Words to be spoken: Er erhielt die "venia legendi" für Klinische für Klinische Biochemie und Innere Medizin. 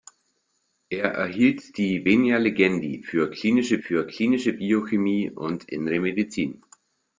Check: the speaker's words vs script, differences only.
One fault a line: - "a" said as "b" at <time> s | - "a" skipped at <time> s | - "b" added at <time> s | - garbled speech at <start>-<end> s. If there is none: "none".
none